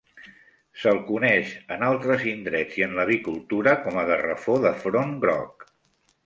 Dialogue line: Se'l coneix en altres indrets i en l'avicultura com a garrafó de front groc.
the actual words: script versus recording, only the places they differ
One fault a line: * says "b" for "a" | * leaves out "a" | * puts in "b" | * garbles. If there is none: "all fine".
all fine